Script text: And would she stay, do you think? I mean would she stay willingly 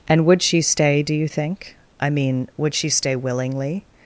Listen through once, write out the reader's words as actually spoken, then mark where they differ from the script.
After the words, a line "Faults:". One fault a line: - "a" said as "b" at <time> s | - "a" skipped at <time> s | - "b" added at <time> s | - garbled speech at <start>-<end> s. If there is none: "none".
And would she stay, do you think? I mean would she stay willingly
Faults:
none